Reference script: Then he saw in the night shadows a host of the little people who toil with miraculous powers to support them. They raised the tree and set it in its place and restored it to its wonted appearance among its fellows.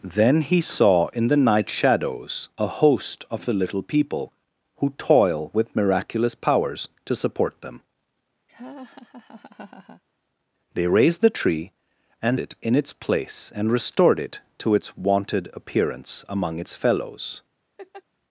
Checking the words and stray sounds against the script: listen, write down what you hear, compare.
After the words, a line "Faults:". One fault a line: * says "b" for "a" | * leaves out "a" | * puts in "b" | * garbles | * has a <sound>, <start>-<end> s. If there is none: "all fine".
Then he saw in the night shadows a host of the little people who toil with miraculous powers to support them. They raised the tree and it in its place and restored it to its wonted appearance among its fellows.
Faults:
* has a laugh, 8.5-10.0 s
* leaves out "set"
* has a laugh, 17.8-18.0 s